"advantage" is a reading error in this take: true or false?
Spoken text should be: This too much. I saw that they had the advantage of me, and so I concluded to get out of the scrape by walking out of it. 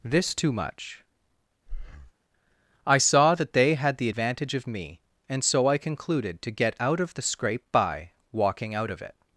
false